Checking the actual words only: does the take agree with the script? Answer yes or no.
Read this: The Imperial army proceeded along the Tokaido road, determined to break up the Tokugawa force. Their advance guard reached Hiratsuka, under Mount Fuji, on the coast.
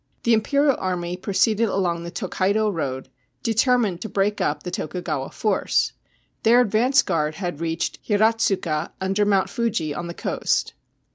no